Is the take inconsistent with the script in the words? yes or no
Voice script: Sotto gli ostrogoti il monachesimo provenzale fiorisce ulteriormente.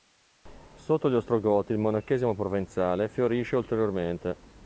no